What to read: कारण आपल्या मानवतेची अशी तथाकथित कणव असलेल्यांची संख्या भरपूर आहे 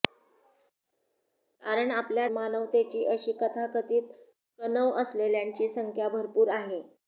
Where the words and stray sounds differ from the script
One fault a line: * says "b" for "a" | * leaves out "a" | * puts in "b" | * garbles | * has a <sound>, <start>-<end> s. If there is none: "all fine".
all fine